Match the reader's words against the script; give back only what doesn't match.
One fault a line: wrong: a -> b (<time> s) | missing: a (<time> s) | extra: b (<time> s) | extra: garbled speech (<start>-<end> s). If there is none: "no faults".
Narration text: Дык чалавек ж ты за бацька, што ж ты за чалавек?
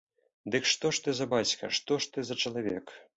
wrong: чалавек -> што (0.7 s)